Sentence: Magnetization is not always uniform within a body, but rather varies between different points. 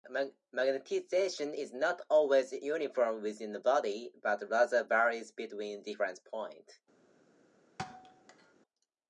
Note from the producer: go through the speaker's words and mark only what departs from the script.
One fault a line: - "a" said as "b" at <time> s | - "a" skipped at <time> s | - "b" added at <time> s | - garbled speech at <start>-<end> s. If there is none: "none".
none